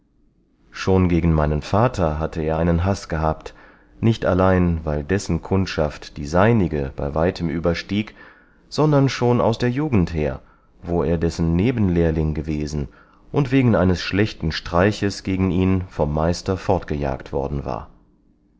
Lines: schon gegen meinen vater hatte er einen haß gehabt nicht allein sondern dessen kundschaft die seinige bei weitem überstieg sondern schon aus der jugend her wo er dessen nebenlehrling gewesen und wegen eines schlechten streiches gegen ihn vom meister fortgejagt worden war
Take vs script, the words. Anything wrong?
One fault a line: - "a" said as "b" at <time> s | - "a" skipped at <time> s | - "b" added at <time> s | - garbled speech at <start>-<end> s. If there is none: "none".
- "sondern" said as "weil" at 4.8 s